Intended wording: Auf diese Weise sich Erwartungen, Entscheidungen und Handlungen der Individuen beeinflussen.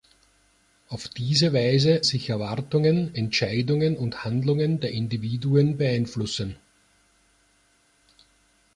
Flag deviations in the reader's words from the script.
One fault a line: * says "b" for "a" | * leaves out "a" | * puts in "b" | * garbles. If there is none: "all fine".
all fine